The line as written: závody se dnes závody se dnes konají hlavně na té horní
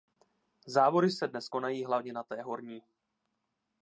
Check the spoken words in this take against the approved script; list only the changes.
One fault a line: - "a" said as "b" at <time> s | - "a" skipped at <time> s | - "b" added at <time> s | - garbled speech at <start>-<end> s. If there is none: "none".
- "závody se dnes" skipped at 1.5 s